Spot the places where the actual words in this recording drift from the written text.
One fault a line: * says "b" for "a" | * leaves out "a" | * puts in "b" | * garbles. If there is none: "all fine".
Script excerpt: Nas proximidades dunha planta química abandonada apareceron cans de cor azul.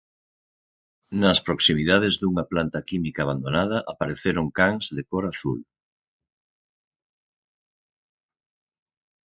all fine